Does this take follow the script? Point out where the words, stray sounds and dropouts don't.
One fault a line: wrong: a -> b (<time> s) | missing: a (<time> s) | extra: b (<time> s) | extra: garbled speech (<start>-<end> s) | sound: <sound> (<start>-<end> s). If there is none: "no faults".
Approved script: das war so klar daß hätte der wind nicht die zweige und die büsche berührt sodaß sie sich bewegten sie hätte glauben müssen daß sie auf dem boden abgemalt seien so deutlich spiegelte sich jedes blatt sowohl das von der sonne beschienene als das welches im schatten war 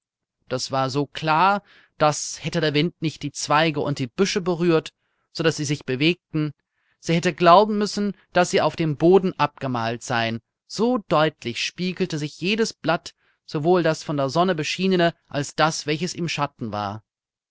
no faults